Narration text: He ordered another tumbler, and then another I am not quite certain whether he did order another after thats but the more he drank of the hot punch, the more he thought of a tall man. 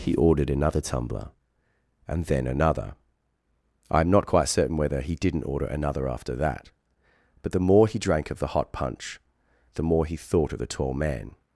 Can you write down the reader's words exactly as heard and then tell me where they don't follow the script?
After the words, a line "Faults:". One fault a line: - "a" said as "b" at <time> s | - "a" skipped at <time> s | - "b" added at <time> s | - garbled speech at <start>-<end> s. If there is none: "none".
He ordered another tumbler, and then another I am not quite certain whether he didn't order another after that but the more he drank of the hot punch, the more he thought of the tall man.
Faults:
- "did" said as "didn't" at 5.2 s
- "thats" said as "that" at 6.3 s
- "a" said as "the" at 10.6 s